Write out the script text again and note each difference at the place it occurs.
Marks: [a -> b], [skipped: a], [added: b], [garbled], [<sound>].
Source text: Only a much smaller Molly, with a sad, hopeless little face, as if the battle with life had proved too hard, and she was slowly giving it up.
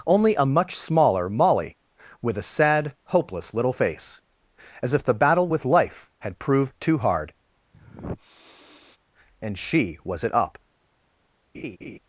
Only a much smaller Molly, with a sad, hopeless little face, as if the battle with life had proved too hard, [sniff] and she was [skipped: slowly giving] it up. [laugh]